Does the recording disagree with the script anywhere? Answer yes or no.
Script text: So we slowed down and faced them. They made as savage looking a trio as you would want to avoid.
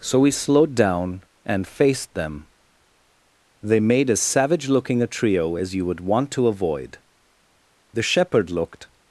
yes